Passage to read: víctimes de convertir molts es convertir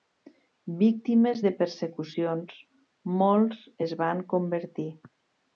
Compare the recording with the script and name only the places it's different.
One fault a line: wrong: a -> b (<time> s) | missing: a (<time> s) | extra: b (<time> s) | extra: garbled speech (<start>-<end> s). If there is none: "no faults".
wrong: convertir -> persecucions (1.6 s)
extra: van (4.1 s)